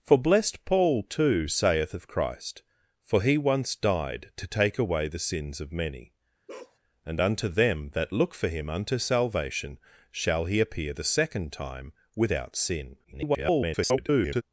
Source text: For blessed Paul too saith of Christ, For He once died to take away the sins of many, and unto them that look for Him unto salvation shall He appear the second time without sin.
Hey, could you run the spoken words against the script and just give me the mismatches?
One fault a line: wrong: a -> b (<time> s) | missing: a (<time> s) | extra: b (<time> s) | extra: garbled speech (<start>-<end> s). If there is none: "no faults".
extra: garbled speech (13.0-14.4 s)